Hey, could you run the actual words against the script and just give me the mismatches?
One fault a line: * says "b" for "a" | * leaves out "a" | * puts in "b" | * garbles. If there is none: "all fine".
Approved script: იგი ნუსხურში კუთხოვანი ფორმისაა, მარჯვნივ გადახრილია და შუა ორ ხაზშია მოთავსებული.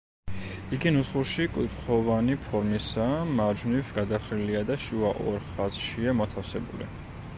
all fine